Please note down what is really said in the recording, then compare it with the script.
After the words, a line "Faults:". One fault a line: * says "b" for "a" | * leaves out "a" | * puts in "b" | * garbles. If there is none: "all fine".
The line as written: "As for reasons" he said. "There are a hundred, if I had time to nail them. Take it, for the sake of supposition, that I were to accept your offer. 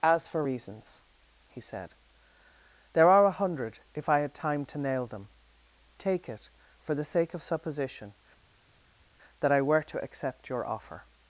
"As for reasons" he said. "There are a hundred, if I had time to nail them. Take it, for the sake of supposition, that I were to accept your offer.
Faults:
all fine